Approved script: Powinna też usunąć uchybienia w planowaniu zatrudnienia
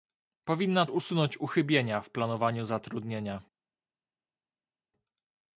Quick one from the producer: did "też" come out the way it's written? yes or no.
no